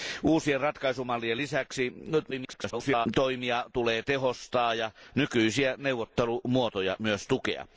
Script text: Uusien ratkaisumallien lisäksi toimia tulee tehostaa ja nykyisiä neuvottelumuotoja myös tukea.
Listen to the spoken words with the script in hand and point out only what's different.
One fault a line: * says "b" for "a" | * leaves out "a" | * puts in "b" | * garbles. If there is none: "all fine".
* garbles